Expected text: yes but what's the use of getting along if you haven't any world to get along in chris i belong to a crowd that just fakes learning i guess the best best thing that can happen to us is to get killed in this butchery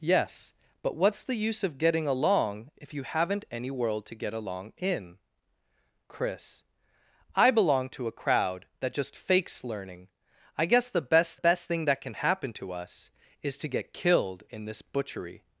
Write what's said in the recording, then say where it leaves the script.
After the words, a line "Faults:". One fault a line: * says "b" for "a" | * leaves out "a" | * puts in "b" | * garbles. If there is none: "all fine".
yes but what's the use of getting along if you haven't any world to get along in chris i belong to a crowd that just fakes learning i guess the best best thing that can happen to us is to get killed in this butchery
Faults:
all fine